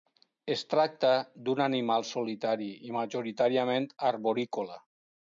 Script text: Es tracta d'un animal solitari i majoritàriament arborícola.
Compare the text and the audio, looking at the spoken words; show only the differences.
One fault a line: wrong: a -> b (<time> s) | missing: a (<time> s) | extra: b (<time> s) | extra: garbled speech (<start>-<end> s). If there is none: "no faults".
no faults